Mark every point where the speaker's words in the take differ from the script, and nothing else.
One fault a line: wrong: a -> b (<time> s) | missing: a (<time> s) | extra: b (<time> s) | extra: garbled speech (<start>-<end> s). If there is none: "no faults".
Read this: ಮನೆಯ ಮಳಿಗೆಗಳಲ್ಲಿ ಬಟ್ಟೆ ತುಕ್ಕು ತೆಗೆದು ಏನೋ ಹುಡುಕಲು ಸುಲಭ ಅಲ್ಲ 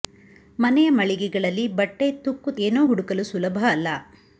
missing: ತೆಗೆದು (2.5 s)